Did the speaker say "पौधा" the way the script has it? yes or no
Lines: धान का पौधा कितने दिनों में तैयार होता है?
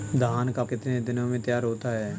no